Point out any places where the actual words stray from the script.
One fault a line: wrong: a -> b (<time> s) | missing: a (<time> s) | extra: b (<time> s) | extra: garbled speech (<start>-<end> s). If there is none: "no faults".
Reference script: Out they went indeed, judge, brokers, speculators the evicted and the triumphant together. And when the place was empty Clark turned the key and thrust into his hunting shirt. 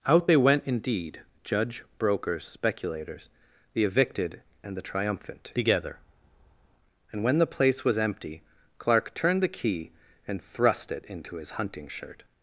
extra: it (10.9 s)